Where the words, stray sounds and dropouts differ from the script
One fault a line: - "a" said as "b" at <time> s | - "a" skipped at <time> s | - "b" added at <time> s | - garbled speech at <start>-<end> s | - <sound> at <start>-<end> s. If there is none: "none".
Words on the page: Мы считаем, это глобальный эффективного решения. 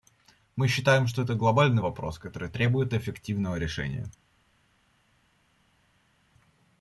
- "что" added at 1.1 s
- "вопрос который требует" added at 1.8 s